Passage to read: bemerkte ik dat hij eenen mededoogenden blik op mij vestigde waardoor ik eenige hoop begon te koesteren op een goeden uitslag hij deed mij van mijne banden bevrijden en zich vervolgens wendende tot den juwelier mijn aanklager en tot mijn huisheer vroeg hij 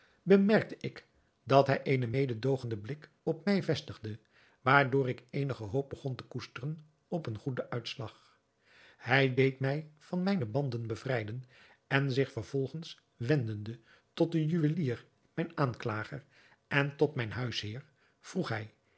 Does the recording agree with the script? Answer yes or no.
yes